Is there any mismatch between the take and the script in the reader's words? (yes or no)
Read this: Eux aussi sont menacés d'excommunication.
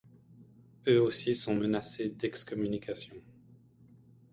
no